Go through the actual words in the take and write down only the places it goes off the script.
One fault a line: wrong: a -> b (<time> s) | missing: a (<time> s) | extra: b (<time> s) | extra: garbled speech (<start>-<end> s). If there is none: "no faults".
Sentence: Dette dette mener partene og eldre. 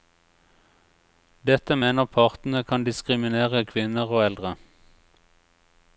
missing: dette (1.8 s)
extra: kan diskriminere kvinner (2.7 s)